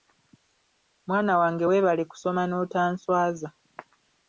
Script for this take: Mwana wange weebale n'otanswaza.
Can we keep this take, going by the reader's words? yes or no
no